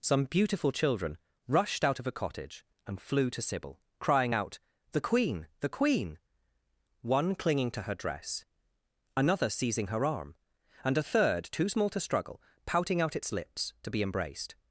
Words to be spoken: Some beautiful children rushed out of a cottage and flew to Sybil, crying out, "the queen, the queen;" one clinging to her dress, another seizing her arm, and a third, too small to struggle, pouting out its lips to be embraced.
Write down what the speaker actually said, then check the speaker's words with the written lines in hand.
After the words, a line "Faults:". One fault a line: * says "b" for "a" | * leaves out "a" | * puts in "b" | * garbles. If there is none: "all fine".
Some beautiful children rushed out of a cottage and flew to Sybil, crying out, "the queen, the queen;" one clinging to her dress, another seizing her arm, and a third, too small to struggle, pouting out its lips to be embraced.
Faults:
all fine